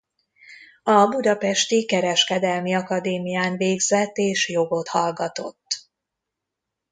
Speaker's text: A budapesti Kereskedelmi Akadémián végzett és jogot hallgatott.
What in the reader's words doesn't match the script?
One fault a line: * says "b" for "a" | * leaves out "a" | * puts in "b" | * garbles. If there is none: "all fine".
all fine